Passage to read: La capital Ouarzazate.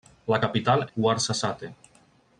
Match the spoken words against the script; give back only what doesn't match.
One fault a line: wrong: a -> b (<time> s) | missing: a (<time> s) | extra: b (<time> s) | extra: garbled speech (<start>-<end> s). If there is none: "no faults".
no faults